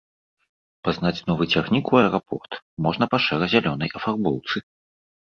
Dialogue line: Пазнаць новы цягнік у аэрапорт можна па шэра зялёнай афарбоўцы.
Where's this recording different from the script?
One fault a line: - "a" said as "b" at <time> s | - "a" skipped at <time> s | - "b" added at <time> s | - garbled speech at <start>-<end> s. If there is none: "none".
none